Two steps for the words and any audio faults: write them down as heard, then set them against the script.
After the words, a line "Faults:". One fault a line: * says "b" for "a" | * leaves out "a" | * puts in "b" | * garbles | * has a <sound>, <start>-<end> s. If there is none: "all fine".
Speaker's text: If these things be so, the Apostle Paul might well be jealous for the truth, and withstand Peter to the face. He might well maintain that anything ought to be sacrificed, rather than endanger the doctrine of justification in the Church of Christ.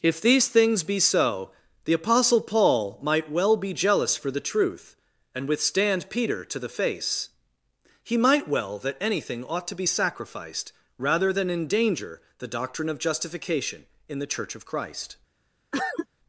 If these things be so, the Apostle Paul might well be jealous for the truth, and withstand Peter to the face. He might well that anything ought to be sacrificed, rather than endanger the doctrine of justification in the Church of Christ.
Faults:
* leaves out "maintain"
* has a cough, 15.7-16.1 s